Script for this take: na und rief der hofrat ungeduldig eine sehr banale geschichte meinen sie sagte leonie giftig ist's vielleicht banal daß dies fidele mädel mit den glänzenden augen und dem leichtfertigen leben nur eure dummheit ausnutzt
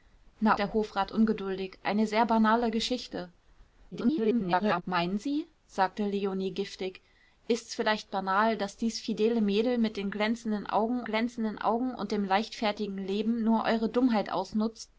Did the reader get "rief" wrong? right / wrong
wrong